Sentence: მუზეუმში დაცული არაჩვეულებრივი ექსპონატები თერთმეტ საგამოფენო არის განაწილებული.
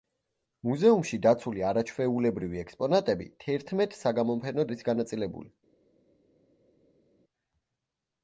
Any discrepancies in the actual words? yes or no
no